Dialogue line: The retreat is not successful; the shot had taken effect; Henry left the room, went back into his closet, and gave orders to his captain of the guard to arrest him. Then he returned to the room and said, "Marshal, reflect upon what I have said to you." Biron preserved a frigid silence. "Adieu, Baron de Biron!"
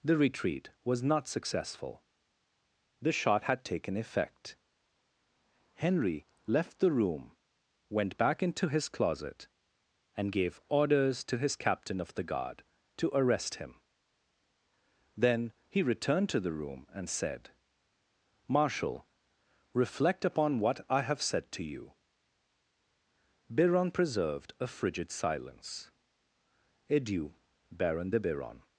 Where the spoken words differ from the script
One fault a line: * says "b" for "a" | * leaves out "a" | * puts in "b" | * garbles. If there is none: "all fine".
* says "was" for "is"